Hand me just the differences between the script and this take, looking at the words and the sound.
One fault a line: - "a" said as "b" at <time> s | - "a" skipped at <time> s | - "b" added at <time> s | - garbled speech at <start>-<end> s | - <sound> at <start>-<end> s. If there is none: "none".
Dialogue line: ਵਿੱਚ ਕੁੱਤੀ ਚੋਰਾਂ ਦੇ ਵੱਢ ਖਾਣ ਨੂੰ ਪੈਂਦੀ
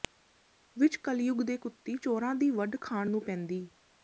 - "ਕਲਯੁੱਗ ਦੇ" added at 1.0 s
- "ਦੇ" said as "ਦੀ" at 2.4 s